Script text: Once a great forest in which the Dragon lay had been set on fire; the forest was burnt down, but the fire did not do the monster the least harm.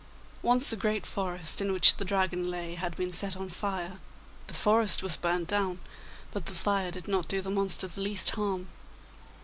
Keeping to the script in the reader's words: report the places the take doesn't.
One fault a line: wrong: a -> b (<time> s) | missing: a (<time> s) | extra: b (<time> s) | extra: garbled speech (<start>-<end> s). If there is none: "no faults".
no faults